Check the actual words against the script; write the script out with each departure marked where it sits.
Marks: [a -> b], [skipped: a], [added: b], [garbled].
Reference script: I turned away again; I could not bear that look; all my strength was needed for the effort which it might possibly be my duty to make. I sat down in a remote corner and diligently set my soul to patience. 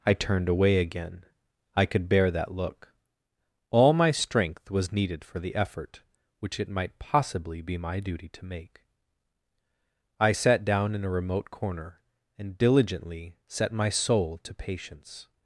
I turned away again; I could [skipped: not] bear that look; all my strength was needed for the effort which it might possibly be my duty to make. I sat down in a remote corner and diligently set my soul to patience.